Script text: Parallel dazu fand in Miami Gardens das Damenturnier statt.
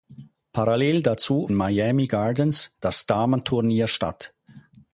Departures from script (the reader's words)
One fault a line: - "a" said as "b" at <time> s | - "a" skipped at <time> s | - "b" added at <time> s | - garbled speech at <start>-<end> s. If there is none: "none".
- "fand in" skipped at 1.5 s